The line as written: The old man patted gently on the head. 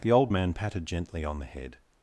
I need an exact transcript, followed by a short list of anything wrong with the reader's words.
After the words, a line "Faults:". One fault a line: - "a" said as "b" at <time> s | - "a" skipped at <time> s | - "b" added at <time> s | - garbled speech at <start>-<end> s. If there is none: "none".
The old man patted gently on the head.
Faults:
none